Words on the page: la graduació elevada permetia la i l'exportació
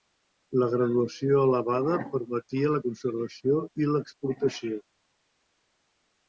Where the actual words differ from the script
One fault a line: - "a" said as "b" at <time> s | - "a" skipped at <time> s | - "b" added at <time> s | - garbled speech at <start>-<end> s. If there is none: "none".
- "conservació" added at 2.9 s